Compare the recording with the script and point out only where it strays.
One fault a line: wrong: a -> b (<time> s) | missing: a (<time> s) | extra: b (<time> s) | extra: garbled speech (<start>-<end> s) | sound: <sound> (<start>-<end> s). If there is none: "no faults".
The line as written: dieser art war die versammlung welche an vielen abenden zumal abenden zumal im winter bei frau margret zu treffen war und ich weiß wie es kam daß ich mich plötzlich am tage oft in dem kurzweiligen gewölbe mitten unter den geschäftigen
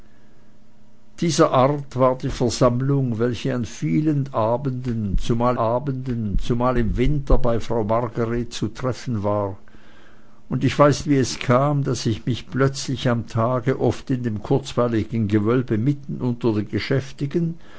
no faults